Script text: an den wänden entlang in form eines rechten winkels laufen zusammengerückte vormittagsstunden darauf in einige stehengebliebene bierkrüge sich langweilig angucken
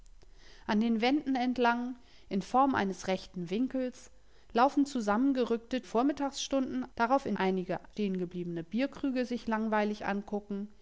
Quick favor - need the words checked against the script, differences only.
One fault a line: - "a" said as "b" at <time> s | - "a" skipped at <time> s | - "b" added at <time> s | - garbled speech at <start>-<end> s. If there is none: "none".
none